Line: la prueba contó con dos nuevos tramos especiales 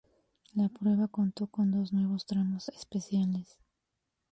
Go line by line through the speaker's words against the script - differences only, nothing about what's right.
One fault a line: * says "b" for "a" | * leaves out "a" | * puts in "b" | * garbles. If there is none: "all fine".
all fine